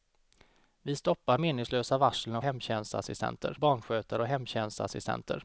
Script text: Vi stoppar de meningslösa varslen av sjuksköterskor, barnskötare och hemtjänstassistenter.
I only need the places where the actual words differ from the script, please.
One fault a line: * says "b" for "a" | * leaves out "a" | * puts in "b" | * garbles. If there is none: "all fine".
* leaves out "de"
* says "hemtjänstassistenter" for "sjuksköterskor"